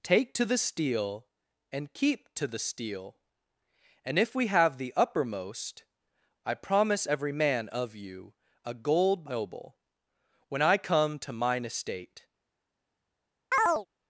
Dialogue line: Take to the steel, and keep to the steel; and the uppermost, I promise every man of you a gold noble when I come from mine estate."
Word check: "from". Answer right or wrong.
wrong